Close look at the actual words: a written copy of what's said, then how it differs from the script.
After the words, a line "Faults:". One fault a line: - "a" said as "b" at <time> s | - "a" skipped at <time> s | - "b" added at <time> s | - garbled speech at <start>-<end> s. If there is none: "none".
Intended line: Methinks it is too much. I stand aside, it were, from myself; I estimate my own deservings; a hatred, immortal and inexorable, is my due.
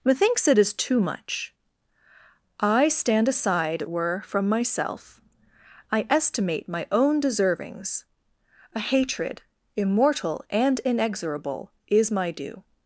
Methinks it is too much. I stand aside, it were, from myself; I estimate my own deservings; a hatred, immortal and inexorable, is my due.
Faults:
none